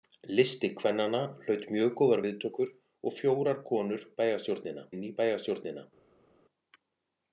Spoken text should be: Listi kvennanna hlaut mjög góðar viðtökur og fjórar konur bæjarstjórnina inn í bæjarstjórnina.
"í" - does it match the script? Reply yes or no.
yes